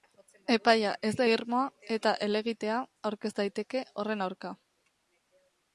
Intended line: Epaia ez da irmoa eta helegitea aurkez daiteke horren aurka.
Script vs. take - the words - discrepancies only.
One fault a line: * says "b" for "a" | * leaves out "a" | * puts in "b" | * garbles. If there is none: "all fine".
all fine